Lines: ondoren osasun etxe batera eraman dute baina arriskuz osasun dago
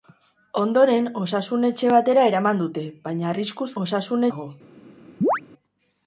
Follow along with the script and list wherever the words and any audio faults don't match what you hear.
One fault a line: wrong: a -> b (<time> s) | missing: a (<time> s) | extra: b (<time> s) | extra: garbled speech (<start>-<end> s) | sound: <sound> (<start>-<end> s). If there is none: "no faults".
sound: chirp (5.2-5.4 s)